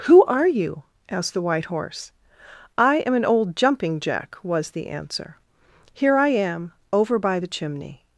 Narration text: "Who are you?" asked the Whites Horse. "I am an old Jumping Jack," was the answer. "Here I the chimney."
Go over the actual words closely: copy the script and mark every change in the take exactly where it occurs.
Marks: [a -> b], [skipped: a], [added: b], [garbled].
"Who are you?" asked the [Whites -> White] Horse. "I am an old Jumping Jack," was the answer. "Here I [added: am over by] the chimney."